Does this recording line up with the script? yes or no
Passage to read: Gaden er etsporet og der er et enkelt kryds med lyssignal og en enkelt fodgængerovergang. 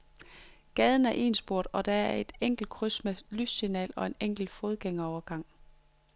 yes